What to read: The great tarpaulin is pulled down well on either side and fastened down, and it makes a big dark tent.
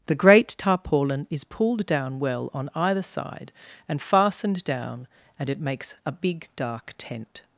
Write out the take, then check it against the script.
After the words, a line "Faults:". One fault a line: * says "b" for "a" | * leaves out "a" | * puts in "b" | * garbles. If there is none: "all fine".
The great tarpaulin is pulled down well on either side and fastened down, and it makes a big dark tent.
Faults:
all fine